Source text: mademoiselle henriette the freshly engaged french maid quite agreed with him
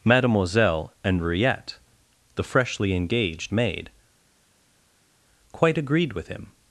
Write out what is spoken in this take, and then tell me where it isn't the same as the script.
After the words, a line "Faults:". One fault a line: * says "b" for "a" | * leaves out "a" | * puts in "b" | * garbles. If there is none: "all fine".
mademoiselle henriette the freshly engaged maid quite agreed with him
Faults:
* leaves out "french"